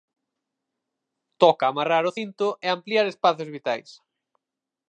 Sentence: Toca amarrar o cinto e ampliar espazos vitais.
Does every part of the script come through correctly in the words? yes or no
yes